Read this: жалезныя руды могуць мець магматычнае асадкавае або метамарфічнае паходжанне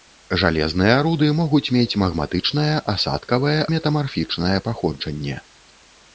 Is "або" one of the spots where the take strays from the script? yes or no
yes